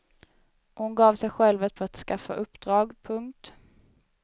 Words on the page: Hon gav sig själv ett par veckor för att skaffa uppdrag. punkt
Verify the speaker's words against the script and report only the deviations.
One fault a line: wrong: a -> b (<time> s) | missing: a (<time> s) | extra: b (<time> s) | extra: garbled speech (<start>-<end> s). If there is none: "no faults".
missing: par veckor (1.8 s)